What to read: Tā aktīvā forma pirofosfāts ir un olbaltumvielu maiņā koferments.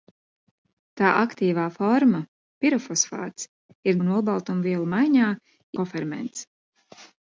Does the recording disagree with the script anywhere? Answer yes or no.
no